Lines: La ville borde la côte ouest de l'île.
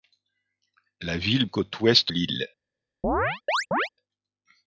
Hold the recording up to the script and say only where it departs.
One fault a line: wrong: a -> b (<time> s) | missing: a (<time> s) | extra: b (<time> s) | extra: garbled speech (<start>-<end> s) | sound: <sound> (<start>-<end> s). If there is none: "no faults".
missing: borde la (1.4 s)
missing: de (2.1 s)
sound: chirp (3.0-3.9 s)